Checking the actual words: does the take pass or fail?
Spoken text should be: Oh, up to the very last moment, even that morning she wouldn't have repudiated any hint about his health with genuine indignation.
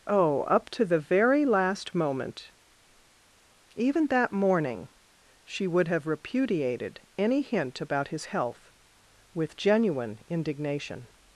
fail